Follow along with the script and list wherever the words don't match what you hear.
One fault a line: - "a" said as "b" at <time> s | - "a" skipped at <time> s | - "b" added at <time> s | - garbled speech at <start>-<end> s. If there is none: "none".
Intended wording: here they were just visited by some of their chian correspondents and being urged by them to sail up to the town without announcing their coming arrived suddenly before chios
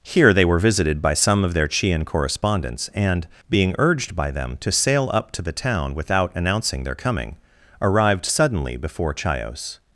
- "just" skipped at 0.6 s